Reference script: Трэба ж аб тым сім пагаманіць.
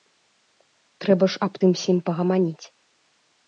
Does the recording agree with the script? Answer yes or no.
yes